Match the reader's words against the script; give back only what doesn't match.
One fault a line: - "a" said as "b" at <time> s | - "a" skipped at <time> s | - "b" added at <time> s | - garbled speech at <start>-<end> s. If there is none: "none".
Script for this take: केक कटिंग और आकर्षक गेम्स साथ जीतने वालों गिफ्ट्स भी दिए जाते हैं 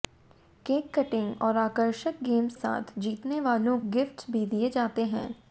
none